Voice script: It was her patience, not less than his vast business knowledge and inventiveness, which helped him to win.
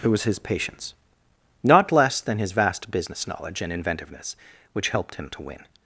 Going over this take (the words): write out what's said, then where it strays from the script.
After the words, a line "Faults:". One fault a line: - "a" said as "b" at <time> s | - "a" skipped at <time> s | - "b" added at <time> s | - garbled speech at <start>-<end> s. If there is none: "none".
It was his patience, not less than his vast business knowledge and inventiveness, which helped him to win.
Faults:
- "her" said as "his" at 0.2 s